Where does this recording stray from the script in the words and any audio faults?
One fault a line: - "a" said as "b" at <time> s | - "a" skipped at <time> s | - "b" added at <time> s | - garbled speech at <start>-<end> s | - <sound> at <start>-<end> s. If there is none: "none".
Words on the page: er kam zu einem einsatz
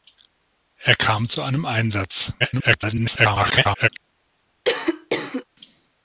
- garbled speech at 2.4-3.9 s
- cough at 4.6-5.4 s